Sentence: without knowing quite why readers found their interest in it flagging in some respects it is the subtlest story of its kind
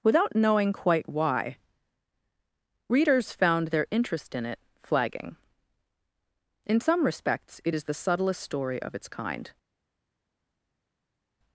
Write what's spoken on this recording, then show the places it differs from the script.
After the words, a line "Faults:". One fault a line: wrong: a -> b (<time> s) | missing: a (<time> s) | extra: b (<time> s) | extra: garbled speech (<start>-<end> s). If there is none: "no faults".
without knowing quite why readers found their interest in it flagging in some respects it is the subtlest story of its kind
Faults:
no faults